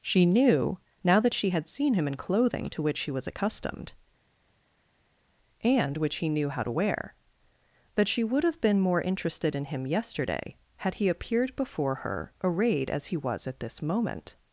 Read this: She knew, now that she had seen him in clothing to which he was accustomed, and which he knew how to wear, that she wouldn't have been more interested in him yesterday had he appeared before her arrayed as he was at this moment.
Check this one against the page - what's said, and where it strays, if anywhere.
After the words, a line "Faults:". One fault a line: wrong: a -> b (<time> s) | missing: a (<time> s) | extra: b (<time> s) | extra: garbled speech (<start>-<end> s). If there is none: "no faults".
She knew, now that she had seen him in clothing to which he was accustomed, and which he knew how to wear, that she would have been more interested in him yesterday had he appeared before her arrayed as he was at this moment.
Faults:
wrong: wouldn't -> would (8.2 s)